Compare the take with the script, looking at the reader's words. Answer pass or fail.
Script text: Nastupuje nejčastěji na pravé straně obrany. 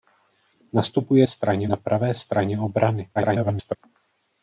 fail